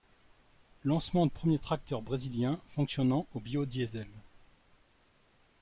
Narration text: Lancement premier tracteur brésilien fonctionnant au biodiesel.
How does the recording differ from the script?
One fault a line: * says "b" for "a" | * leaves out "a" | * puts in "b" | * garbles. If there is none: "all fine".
all fine